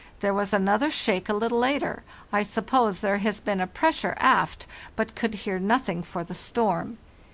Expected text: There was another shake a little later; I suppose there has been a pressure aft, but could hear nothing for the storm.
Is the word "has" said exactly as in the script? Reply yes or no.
yes